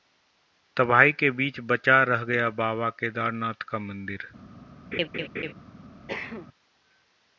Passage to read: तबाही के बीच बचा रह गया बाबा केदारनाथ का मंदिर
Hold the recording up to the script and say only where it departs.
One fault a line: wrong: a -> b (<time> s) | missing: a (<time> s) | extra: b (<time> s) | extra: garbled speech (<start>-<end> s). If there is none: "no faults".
no faults